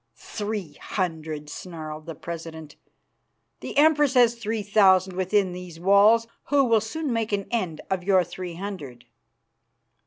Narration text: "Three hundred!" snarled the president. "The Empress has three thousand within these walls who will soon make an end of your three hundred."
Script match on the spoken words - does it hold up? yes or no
yes